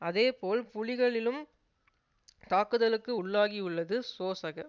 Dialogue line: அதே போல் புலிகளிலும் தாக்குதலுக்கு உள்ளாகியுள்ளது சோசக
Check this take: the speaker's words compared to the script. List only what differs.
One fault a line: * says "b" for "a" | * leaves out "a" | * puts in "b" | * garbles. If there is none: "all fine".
all fine